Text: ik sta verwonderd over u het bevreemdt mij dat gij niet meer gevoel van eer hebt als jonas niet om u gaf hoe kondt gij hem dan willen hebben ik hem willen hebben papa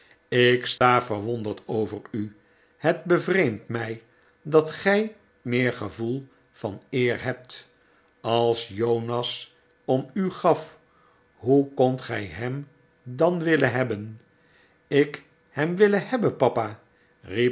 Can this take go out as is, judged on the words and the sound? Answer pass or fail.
fail